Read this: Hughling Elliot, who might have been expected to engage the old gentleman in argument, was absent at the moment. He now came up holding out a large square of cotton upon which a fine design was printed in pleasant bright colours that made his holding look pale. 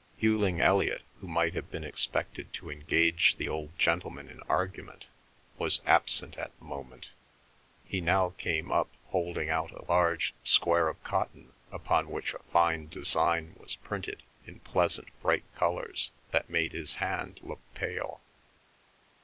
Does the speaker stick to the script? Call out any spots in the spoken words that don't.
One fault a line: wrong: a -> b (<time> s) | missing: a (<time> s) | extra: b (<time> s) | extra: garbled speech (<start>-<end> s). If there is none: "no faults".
wrong: holding -> hand (17.0 s)